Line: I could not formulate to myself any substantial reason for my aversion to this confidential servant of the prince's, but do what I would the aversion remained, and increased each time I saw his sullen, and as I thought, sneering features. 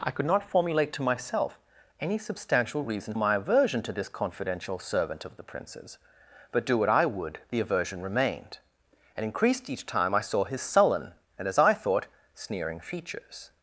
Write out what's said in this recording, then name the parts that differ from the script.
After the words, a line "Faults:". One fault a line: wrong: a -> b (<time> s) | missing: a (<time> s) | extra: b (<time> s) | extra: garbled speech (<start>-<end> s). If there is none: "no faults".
I could not formulate to myself any substantial reason my aversion to this confidential servant of the prince's, but do what I would the aversion remained, and increased each time I saw his sullen, and as I thought, sneering features.
Faults:
missing: for (3.1 s)